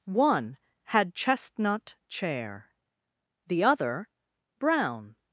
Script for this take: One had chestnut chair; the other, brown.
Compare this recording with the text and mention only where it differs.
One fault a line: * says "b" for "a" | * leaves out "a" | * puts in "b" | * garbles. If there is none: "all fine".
all fine